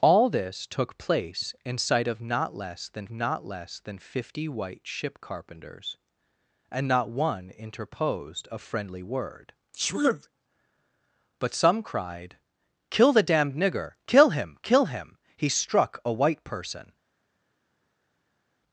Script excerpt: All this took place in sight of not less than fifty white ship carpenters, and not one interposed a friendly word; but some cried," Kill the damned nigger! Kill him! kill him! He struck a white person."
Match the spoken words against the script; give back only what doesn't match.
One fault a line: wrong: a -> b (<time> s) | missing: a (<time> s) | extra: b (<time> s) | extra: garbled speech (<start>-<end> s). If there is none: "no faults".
extra: not less than (3.1 s)